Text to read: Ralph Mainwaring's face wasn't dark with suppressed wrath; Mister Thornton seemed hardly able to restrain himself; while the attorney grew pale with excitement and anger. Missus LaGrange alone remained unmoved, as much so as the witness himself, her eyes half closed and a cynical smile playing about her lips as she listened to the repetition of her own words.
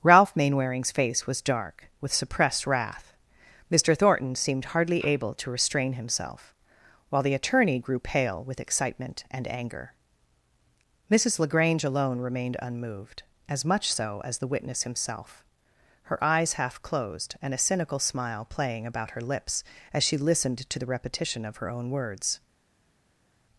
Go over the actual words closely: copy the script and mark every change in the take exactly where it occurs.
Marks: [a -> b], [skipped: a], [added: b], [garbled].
Ralph Mainwaring's face [wasn't -> was] dark with suppressed wrath; Mister Thornton seemed hardly able to restrain himself; while the attorney grew pale with excitement and anger. Missus LaGrange alone remained unmoved, as much so as the witness himself, her eyes half closed and a cynical smile playing about her lips as she listened to the repetition of her own words.